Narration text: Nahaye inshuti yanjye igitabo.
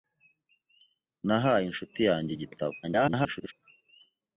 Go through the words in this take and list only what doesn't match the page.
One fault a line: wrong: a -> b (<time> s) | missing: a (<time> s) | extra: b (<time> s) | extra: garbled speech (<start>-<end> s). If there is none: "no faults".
extra: garbled speech (2.8-3.5 s)